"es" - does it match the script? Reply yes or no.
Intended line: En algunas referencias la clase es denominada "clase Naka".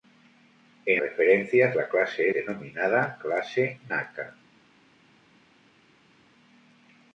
no